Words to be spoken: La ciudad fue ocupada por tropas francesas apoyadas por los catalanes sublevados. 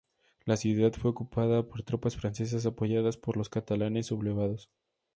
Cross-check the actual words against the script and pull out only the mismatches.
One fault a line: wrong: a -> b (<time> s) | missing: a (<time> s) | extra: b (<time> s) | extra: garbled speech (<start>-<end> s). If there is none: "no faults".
no faults